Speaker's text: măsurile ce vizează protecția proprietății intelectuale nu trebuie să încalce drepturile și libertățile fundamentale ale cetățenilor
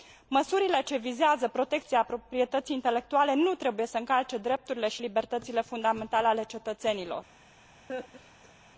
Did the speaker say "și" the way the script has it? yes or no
yes